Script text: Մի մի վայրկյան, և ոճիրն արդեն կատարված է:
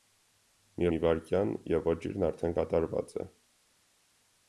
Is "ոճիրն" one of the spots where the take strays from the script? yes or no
no